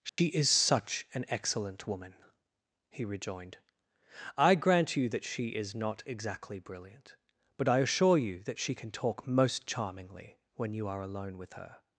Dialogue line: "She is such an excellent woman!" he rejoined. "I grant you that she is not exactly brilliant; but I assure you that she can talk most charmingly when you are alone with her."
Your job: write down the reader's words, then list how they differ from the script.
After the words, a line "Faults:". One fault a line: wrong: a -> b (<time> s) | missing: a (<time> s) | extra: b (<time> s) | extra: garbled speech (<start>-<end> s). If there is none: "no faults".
"She is such an excellent woman!" he rejoined. "I grant you that she is not exactly brilliant; but I assure you that she can talk most charmingly when you are alone with her."
Faults:
no faults